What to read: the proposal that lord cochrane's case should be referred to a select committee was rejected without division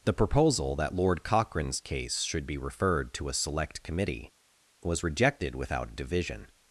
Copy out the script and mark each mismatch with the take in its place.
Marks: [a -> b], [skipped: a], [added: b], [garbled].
the proposal that lord cochrane's case should be referred to a select committee was rejected without division